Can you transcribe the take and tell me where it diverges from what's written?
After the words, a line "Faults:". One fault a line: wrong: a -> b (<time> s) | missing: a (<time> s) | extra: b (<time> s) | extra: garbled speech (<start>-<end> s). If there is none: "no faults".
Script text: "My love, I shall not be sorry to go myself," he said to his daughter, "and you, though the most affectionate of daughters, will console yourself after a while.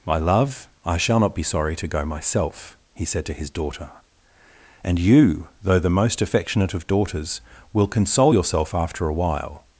"My love, I shall not be sorry to go myself," he said to his daughter, "and you, though the most affectionate of daughters, will console yourself after a while.
Faults:
no faults